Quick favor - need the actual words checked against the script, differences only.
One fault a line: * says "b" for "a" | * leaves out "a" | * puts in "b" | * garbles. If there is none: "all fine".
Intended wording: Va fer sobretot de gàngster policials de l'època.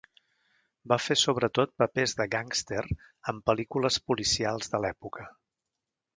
* puts in "papers"
* puts in "en pel·lícules"